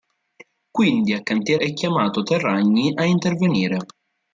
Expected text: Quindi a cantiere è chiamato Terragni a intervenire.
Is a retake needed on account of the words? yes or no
no